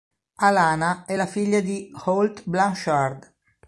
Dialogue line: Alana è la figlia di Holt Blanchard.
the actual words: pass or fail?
pass